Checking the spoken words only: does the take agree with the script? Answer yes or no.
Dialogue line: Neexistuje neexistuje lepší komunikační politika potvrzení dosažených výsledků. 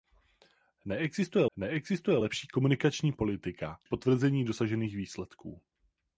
yes